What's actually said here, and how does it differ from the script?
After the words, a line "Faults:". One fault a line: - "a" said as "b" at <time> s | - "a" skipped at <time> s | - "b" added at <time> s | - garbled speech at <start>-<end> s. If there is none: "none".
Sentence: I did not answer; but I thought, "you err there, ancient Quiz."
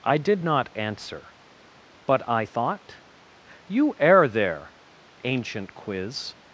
I did not answer; but I thought, "you err there, ancient Quiz."
Faults:
none